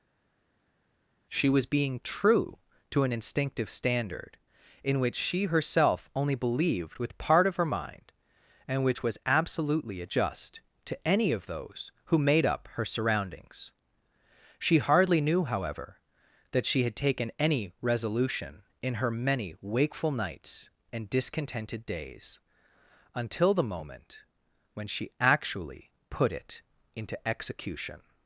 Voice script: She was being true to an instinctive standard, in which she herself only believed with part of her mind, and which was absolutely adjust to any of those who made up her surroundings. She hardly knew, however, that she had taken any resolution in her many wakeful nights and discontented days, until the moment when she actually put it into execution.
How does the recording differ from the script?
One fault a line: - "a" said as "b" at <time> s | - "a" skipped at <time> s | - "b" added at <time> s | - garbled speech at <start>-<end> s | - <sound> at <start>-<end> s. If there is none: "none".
none